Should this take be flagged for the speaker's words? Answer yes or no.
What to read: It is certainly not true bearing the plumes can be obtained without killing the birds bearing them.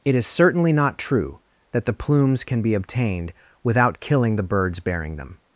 yes